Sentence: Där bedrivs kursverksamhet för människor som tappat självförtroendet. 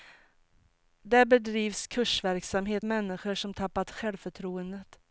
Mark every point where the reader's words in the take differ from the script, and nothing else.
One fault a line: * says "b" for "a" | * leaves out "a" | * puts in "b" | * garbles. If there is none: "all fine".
* leaves out "för"